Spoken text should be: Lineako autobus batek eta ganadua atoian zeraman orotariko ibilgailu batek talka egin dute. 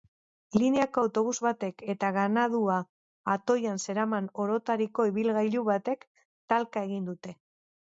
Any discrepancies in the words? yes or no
no